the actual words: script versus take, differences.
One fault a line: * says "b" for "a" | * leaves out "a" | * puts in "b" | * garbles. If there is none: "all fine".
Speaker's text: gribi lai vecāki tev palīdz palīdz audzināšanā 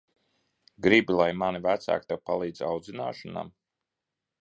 * puts in "mani"
* leaves out "palīdz"